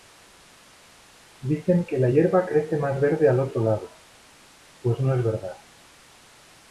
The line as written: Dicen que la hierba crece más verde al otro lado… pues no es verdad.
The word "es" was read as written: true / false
true